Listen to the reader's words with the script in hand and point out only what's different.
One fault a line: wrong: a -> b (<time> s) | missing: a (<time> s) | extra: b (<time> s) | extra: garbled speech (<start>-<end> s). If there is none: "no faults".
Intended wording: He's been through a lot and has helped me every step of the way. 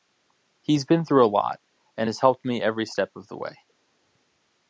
no faults